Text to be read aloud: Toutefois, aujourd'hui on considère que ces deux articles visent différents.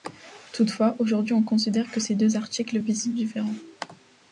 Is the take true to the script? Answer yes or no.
yes